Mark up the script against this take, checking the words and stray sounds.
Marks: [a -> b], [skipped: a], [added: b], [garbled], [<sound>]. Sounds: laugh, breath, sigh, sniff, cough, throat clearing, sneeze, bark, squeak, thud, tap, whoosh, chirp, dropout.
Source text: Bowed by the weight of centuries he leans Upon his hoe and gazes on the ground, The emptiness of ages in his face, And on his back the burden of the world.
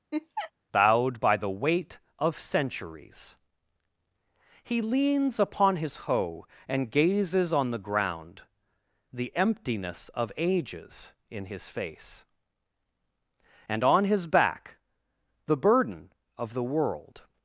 [laugh] Bowed by the weight of centuries he leans Upon his hoe and gazes on the ground, The emptiness of ages in his face, And on his back the burden of the world.